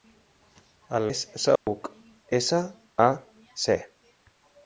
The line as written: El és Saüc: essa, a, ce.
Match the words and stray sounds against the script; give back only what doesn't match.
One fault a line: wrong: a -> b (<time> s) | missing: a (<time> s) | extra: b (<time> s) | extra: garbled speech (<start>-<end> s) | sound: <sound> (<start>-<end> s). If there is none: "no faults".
sound: dropout (1.6-1.7 s)